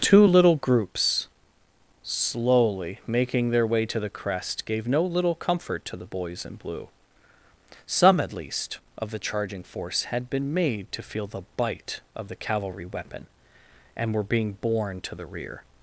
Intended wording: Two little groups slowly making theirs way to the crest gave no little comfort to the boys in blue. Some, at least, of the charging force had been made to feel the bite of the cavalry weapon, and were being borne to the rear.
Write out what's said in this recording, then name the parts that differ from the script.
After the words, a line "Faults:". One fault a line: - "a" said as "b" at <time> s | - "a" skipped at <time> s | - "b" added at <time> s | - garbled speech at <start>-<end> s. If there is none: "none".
Two little groups slowly making their way to the crest gave no little comfort to the boys in blue. Some, at least, of the charging force had been made to feel the bite of the cavalry weapon, and were being borne to the rear.
Faults:
- "theirs" said as "their" at 3.5 s